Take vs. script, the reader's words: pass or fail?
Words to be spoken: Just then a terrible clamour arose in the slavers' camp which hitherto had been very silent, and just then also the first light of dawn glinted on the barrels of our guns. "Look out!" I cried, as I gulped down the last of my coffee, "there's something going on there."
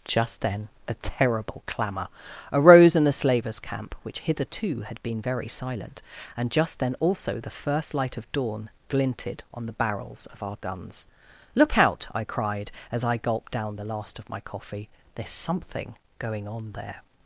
pass